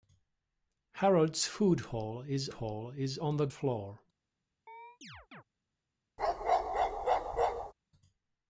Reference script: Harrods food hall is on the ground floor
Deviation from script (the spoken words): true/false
true